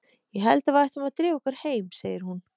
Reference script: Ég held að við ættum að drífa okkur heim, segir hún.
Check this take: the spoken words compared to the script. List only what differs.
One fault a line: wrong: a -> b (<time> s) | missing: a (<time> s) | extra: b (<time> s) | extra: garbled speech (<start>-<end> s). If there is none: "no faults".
no faults